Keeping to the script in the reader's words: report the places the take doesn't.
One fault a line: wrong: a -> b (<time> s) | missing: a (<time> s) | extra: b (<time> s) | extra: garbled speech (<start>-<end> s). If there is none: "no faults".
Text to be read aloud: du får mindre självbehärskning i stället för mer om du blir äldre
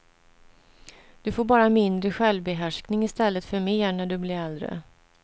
extra: bara (1.4 s)
wrong: om -> när (3.9 s)